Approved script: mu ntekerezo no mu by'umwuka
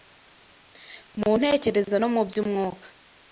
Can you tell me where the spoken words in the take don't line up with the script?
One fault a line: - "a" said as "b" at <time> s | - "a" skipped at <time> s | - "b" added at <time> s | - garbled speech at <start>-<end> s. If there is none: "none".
none